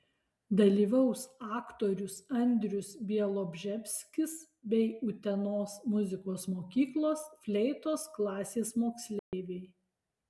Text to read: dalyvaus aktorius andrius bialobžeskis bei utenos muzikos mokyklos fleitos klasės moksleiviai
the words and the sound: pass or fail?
fail